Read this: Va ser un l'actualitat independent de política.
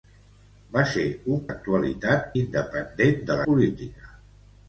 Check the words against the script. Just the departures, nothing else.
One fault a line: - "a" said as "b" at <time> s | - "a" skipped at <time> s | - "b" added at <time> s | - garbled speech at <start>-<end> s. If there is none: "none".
none